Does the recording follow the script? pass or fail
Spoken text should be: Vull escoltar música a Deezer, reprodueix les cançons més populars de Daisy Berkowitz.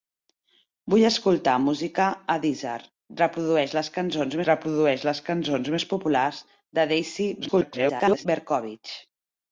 fail